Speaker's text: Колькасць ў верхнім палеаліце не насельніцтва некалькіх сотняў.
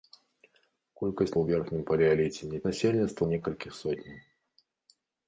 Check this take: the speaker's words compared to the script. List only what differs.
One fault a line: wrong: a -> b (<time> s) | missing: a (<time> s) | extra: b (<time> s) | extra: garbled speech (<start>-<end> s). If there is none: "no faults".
no faults